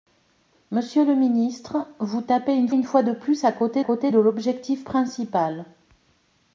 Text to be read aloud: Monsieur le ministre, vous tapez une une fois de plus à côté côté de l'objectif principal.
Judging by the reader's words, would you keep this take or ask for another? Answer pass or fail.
pass